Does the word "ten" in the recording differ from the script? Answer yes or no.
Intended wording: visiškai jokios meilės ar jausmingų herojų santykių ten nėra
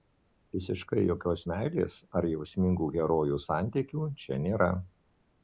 yes